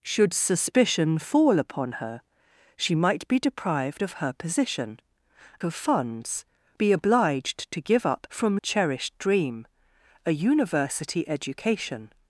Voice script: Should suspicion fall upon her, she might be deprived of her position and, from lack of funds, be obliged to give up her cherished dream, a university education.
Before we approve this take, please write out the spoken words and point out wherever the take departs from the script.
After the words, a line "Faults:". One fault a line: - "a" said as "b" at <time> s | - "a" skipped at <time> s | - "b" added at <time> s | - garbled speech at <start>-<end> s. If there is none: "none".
Should suspicion fall upon her, she might be deprived of her position of funds, be obliged to give up from cherished dream, a university education.
Faults:
- "and from lack" skipped at 5.0 s
- "her" said as "from" at 8.3 s